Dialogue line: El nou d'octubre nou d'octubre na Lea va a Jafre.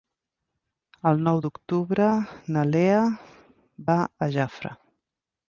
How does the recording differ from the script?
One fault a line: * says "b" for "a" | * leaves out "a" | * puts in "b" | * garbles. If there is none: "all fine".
* leaves out "nou d'octubre"